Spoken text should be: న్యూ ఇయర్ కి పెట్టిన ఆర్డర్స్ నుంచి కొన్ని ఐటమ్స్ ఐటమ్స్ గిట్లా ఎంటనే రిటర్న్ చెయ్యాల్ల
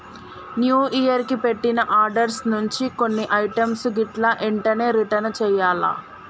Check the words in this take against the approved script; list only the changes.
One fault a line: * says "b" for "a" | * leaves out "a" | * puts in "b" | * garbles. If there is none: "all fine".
* leaves out "ఐటమ్స్"